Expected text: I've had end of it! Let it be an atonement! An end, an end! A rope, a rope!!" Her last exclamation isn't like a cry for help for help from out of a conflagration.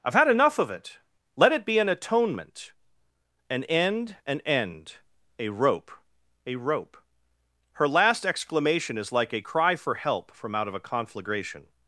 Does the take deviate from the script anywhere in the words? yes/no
yes